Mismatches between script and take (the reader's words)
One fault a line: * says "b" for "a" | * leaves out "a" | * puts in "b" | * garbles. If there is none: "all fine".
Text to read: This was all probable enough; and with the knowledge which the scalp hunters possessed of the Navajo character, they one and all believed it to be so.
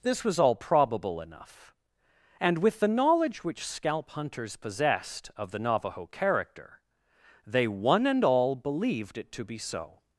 * leaves out "the"